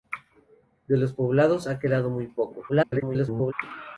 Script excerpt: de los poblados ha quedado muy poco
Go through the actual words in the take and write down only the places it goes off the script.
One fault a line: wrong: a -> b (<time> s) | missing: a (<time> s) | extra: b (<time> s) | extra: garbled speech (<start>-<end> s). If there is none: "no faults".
extra: garbled speech (2.7-3.5 s)